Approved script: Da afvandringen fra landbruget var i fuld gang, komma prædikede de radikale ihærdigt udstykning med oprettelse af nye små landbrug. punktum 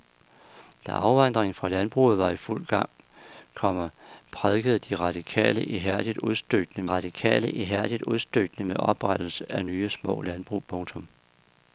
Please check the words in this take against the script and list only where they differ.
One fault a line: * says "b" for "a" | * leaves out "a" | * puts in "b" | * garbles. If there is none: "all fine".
* puts in "radikale ihærdigt udstykning"